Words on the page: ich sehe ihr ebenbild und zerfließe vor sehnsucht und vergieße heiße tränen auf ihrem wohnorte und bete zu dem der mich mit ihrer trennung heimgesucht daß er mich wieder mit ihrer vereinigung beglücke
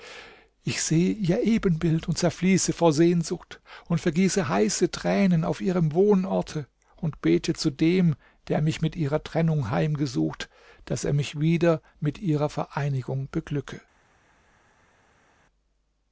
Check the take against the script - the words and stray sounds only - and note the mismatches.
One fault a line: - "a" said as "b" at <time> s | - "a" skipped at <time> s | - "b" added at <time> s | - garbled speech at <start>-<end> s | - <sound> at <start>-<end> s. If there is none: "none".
none